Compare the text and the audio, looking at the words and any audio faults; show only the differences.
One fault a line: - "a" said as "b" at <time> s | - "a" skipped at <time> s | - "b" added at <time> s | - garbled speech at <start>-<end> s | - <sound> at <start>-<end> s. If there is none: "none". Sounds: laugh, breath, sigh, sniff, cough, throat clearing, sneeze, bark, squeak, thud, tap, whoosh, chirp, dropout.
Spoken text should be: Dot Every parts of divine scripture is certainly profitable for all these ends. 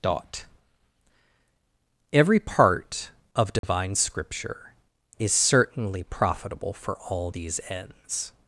- "parts" said as "part" at 2.4 s
- dropout at 3.6-3.6 s